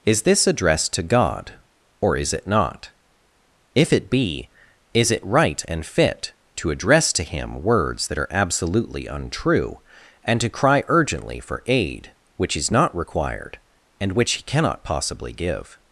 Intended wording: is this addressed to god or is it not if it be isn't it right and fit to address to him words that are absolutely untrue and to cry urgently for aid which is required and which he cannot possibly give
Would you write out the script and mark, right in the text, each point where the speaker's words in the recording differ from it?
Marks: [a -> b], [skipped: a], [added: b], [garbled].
is this addressed to god or is it not if it be [isn't -> is] it right and fit to address to him words that are absolutely untrue and to cry urgently for aid which is [added: not] required and which he cannot possibly give